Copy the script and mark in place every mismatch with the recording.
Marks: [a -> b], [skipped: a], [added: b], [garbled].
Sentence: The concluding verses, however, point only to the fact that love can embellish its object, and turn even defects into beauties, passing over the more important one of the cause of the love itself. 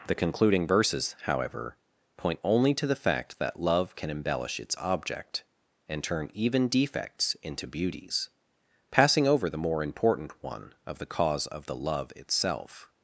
The concluding verses, however, point only to the fact that love can embellish its object, and turn even defects into beauties, passing over the more important one of the cause of the love itself.